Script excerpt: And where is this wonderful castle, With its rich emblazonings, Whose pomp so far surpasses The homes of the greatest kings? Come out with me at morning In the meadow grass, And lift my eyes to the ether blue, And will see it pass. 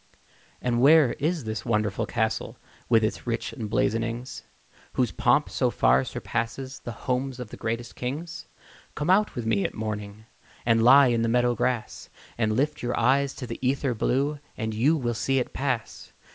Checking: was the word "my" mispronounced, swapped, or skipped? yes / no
yes